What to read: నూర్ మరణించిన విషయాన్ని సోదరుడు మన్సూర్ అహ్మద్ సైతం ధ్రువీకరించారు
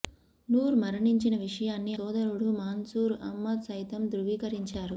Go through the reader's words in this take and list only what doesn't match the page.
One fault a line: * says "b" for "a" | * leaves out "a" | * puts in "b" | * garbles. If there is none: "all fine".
all fine